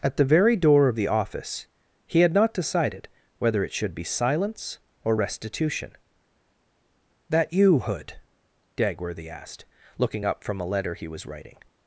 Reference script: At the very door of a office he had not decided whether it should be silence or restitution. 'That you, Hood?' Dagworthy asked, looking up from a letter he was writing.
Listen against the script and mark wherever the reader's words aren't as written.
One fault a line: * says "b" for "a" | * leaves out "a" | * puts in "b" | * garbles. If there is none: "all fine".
* says "the" for "a"